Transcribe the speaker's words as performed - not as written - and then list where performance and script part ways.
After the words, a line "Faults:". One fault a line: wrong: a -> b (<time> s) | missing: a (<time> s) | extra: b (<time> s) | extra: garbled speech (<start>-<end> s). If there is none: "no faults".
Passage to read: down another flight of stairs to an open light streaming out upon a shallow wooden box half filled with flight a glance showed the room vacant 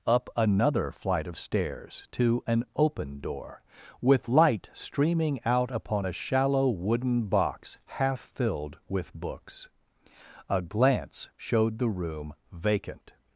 up another flight of stairs to an open door with light streaming out upon a shallow wooden box half filled with books a glance showed the room vacant
Faults:
wrong: down -> up (0.1 s)
extra: door with (3.2 s)
wrong: flight -> books (9.1 s)